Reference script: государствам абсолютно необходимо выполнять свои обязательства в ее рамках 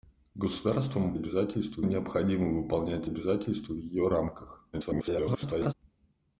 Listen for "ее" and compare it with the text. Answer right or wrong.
right